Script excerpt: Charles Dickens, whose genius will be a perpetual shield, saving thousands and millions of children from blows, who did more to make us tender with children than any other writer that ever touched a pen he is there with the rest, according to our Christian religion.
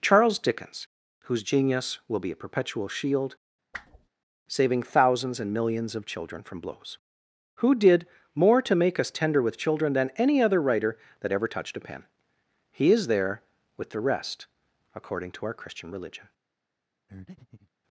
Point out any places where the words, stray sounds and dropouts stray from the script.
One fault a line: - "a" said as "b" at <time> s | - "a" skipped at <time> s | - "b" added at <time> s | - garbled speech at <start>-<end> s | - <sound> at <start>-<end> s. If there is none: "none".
- whoosh at 3.7-4.1 s
- breath at 17.1-17.7 s